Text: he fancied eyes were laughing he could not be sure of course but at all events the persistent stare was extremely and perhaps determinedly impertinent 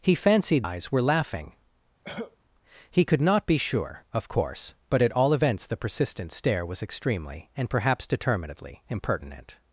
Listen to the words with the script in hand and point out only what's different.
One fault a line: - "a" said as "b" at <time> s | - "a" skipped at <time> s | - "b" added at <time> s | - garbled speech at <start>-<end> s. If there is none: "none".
none